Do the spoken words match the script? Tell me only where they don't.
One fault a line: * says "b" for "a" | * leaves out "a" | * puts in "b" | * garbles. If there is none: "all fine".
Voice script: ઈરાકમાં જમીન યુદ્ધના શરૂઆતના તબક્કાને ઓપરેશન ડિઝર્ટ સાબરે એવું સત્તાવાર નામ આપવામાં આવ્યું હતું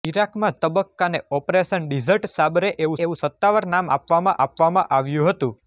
* leaves out "જમીન યુદ્ધના શરૂઆતના"
* puts in "એવું"
* puts in "આપવામાં"